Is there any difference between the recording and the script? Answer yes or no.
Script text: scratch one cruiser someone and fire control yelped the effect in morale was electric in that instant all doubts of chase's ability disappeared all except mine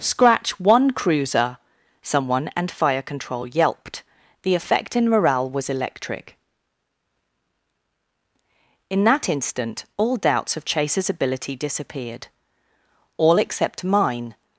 no